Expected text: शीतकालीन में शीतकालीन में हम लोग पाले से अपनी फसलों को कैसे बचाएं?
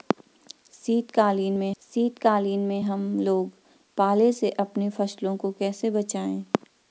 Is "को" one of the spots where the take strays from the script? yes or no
no